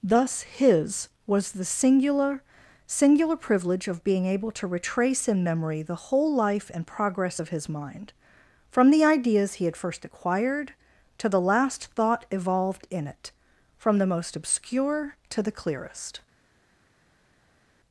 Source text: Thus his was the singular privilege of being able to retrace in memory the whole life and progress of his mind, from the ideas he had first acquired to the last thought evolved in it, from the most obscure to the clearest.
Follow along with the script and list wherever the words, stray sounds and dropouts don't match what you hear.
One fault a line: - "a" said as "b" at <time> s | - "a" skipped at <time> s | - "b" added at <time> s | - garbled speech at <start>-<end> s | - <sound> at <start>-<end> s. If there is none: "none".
- "singular" added at 2.9 s